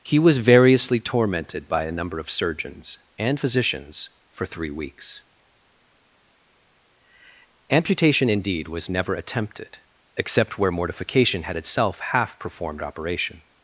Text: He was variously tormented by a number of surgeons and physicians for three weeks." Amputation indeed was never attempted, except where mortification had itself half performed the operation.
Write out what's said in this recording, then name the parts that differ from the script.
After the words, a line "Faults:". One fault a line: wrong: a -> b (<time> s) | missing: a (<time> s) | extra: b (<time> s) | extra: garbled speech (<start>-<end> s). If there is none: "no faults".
He was variously tormented by a number of surgeons and physicians for three weeks." Amputation indeed was never attempted, except where mortification had itself half performed operation.
Faults:
missing: the (12.8 s)